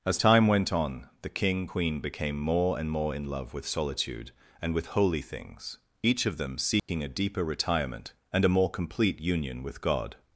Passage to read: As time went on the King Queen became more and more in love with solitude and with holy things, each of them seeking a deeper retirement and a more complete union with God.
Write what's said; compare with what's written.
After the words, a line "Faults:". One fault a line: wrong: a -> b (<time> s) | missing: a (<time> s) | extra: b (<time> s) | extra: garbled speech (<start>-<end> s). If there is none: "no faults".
As time went on the King Queen became more and more in love with solitude and with holy things, each of them seeking a deeper retirement and a more complete union with God.
Faults:
no faults